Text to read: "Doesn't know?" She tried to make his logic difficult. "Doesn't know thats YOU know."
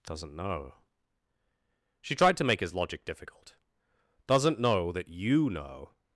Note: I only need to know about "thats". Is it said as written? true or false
false